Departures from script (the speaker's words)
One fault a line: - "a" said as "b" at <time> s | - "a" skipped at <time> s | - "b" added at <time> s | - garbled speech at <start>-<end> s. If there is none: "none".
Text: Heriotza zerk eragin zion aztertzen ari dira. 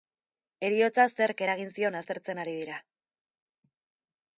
none